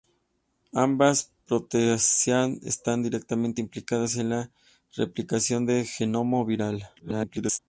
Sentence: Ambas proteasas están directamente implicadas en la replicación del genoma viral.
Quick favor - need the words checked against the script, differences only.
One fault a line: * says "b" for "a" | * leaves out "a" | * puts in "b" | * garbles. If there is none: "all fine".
* garbles